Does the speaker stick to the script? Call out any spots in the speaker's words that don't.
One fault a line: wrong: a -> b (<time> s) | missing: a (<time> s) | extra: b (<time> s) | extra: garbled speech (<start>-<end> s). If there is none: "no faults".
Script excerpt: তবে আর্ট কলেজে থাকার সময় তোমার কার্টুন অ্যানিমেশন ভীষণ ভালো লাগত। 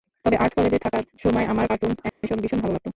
wrong: তোমার -> আমার (1.5 s)